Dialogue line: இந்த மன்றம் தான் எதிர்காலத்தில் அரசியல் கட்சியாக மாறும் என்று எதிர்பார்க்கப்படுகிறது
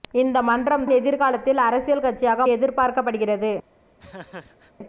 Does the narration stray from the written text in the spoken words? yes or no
yes